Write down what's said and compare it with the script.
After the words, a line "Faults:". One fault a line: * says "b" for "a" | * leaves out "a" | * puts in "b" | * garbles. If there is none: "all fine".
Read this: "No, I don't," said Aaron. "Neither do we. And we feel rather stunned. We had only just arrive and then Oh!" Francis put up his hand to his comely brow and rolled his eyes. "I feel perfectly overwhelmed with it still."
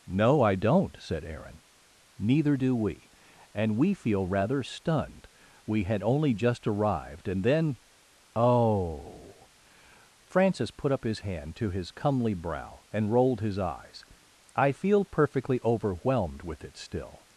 "No, I don't," said Aaron. "Neither do we. And we feel rather stunned. We had only just arrived and then Oh!" Francis put up his hand to his comely brow and rolled his eyes. "I feel perfectly overwhelmed with it still."
Faults:
* says "arrived" for "arrive"